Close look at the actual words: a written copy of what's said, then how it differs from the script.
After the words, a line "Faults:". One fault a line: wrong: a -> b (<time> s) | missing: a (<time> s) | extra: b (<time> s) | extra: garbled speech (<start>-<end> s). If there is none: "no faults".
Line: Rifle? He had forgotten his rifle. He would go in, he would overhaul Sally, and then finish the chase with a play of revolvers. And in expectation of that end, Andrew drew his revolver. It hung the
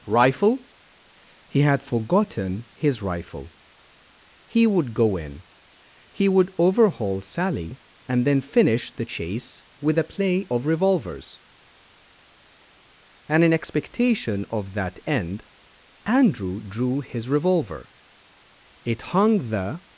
Rifle? He had forgotten his rifle. He would go in, he would overhaul Sally, and then finish the chase with a play of revolvers. And in expectation of that end, Andrew drew his revolver. It hung the
Faults:
no faults